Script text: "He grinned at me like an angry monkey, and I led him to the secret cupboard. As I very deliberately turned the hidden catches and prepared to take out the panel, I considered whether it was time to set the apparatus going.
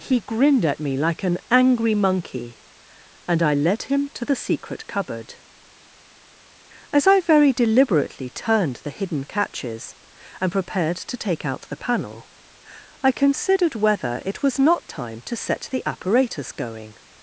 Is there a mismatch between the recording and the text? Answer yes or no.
yes